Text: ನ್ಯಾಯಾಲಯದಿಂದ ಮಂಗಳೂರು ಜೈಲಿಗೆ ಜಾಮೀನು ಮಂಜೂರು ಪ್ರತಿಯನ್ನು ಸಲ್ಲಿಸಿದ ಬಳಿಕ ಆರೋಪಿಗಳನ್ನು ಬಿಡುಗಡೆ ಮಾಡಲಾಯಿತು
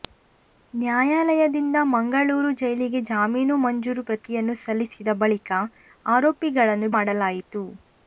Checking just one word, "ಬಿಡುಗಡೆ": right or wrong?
wrong